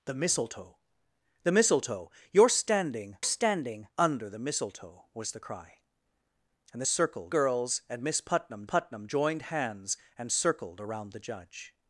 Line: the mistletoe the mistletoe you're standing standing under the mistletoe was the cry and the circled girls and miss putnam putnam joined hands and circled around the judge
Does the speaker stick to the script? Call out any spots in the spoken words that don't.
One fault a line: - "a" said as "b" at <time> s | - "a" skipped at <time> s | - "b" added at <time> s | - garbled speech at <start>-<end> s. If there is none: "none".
none